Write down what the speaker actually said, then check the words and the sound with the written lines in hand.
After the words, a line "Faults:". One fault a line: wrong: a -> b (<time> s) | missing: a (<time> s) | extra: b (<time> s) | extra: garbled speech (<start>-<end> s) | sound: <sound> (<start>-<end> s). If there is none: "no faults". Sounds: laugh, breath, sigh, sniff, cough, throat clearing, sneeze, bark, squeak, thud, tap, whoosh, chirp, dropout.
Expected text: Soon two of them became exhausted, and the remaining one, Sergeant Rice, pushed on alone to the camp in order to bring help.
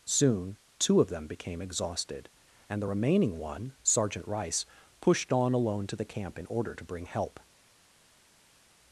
Soon two of them became exhausted, and the remaining one, Sergeant Rice, pushed on alone to the camp in order to bring help.
Faults:
no faults